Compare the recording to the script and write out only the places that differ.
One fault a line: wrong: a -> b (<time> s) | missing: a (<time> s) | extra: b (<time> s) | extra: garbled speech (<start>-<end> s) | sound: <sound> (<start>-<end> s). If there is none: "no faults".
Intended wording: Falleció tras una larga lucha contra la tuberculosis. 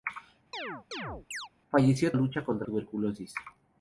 sound: chirp (0.5-1.5 s)
missing: tras una larga (2.1 s)
missing: la (2.7 s)